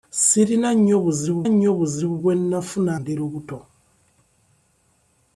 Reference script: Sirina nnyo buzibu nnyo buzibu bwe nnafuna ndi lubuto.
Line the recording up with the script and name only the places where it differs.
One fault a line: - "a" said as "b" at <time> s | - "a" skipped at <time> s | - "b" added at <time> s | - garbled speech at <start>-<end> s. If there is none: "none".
none